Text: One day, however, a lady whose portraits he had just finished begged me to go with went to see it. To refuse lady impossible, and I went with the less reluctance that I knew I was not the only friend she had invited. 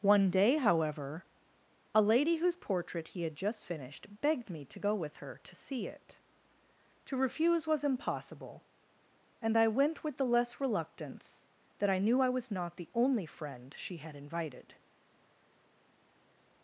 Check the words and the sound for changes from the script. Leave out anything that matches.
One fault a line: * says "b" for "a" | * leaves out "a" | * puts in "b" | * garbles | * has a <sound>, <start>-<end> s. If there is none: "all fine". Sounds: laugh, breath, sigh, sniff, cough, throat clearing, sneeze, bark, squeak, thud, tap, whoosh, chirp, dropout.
* says "portrait" for "portraits"
* says "her" for "went"
* says "was" for "lady"